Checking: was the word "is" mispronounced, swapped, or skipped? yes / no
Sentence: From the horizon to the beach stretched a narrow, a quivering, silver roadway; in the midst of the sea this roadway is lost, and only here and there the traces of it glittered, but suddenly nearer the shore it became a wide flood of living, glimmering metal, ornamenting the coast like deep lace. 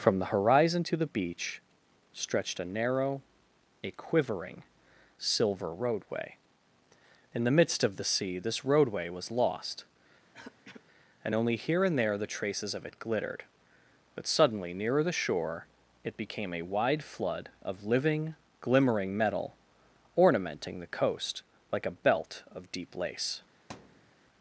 yes